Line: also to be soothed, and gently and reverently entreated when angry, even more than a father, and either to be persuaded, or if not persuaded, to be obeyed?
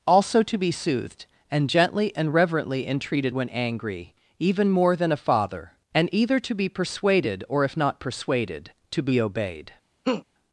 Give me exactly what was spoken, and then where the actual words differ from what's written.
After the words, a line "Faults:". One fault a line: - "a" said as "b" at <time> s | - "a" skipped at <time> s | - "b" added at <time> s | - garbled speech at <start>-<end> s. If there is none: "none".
also to be soothed, and gently and reverently entreated when angry, even more than a father, and either to be persuaded, or if not persuaded, to be obeyed?
Faults:
none